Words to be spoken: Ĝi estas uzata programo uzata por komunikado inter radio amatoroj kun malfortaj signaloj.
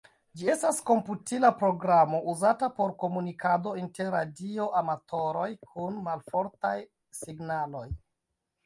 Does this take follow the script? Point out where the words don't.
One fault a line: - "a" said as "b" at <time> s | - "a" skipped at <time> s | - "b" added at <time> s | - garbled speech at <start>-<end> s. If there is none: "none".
- "uzata" said as "komputila" at 0.9 s